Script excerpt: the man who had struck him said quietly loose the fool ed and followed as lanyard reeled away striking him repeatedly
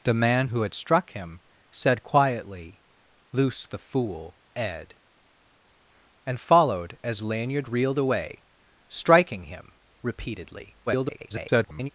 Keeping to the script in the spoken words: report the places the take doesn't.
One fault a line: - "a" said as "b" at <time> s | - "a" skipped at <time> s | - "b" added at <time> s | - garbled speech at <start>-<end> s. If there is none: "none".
- garbled speech at 10.9-11.9 s